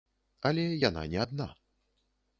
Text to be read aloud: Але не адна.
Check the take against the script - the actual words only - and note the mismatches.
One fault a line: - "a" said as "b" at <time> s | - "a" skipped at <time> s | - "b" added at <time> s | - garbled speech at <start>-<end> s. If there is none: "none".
- "яна" added at 0.9 s